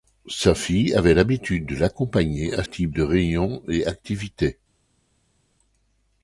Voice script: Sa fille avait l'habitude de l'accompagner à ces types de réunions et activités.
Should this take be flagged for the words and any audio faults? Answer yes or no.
yes